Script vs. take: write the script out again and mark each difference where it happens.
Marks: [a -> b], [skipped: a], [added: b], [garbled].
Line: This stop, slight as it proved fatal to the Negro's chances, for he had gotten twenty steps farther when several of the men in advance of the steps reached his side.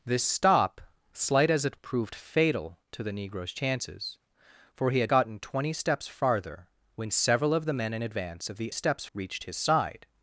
This stop, slight as it proved fatal to the Negro's chances, for he had gotten twenty steps farther when several of the men in advance of the steps reached his side.